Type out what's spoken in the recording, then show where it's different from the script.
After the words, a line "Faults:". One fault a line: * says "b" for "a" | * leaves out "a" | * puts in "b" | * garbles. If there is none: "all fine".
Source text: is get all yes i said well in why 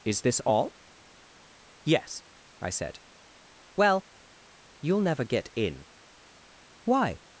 is this all yes i said well you'll never get in why
Faults:
* says "this" for "get"
* puts in "you'll never get"